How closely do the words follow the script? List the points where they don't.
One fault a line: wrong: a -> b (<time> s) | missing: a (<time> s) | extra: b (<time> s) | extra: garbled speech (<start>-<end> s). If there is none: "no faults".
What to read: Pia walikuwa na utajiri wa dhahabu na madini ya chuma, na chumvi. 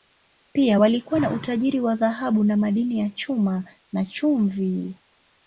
no faults